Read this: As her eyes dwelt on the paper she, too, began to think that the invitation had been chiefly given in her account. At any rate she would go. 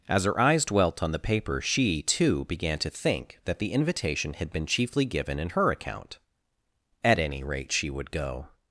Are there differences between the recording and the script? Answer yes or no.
no